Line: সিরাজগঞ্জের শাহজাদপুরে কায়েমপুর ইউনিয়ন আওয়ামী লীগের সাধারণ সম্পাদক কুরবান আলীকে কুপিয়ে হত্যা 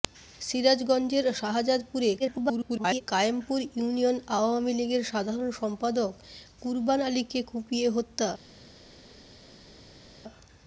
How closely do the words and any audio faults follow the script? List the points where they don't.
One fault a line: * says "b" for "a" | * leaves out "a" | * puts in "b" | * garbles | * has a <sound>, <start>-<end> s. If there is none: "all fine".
* garbles